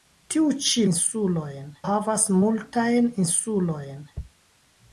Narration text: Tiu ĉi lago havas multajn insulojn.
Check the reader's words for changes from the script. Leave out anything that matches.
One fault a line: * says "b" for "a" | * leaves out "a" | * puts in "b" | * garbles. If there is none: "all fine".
* says "insulojn" for "lago"